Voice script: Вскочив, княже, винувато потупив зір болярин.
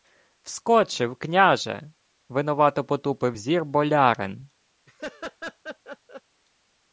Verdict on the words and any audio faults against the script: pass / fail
fail